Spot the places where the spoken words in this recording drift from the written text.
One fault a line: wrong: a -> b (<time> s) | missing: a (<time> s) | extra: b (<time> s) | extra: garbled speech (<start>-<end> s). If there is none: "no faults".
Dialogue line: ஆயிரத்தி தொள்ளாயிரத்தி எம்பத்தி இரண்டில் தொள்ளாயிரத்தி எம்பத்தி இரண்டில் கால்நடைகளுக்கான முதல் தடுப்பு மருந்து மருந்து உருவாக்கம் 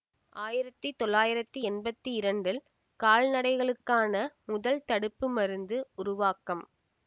missing: தொள்ளாயிரத்தி எம்பத்தி இரண்டில் (2.6 s)
missing: மருந்து (5.8 s)